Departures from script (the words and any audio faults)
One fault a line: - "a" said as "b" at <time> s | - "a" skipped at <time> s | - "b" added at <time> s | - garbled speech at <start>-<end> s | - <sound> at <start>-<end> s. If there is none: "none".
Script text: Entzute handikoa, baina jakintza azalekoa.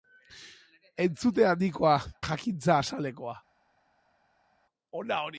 - "baina" skipped at 2.0 s